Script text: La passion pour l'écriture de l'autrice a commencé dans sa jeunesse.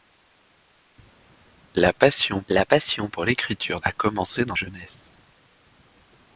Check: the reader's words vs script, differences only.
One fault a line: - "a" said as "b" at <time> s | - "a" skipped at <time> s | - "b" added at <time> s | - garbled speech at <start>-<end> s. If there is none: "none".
- "la passion" added at 2.5 s
- "de l'autrice" skipped at 3.8 s
- "sa" skipped at 4.6 s